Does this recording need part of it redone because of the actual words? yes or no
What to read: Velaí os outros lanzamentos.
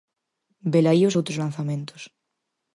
no